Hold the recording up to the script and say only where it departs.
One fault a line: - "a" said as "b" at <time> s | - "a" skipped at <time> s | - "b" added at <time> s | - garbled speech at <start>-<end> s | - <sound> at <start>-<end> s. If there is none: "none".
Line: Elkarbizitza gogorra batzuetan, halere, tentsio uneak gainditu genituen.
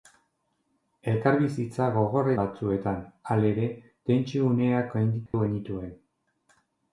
- dropout at 5.3-5.3 s